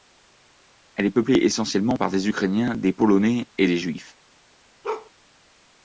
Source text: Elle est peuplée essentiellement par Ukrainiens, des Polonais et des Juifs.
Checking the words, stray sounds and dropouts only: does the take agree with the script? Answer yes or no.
no